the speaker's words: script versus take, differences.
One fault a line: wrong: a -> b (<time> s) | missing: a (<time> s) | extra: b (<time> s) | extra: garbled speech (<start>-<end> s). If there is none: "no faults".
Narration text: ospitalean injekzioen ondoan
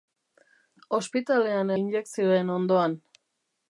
no faults